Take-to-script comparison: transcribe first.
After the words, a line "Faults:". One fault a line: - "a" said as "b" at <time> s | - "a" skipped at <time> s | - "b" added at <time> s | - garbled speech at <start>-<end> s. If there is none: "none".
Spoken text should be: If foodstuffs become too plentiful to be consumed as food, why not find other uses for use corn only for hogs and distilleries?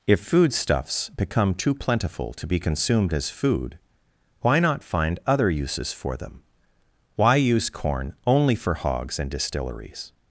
If foodstuffs become too plentiful to be consumed as food, why not find other uses for them? Why use corn only for hogs and distilleries?
Faults:
- "them Why" added at 6.2 s